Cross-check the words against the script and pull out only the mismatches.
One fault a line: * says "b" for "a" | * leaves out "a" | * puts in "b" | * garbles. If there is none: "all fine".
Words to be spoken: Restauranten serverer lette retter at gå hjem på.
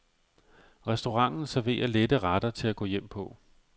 * puts in "til"